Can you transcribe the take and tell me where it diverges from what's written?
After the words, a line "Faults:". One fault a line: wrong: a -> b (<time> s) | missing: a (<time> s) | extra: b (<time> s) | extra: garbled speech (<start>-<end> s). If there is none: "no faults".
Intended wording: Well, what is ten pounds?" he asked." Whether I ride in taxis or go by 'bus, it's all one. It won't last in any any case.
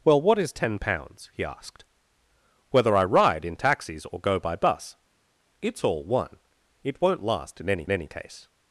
Well, what is ten pounds?" he asked." Whether I ride in taxis or go by 'bus, it's all one. It won't last in any any case.
Faults:
no faults